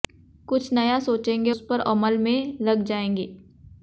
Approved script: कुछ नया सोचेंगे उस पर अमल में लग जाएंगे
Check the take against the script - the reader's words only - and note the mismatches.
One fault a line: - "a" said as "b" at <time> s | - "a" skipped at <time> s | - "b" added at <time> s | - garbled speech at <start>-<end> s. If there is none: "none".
none